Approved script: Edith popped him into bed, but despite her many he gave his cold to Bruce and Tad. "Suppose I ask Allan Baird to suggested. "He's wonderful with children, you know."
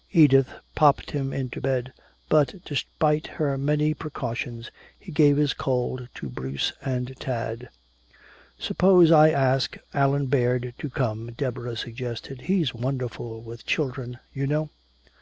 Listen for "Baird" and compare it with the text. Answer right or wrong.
right